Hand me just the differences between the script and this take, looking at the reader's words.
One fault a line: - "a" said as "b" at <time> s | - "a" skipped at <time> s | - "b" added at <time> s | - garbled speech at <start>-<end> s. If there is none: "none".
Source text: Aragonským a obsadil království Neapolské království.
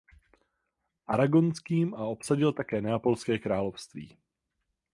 - "království" said as "také" at 2.5 s